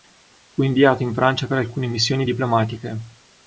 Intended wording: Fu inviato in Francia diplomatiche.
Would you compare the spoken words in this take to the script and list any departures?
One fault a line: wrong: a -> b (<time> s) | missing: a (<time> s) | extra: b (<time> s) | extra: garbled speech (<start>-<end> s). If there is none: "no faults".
extra: per alcune missioni (1.4 s)